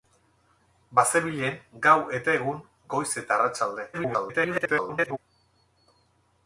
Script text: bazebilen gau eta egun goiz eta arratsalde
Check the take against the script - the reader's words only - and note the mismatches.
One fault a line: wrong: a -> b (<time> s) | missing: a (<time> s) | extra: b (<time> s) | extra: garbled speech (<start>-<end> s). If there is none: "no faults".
extra: garbled speech (3.9-5.2 s)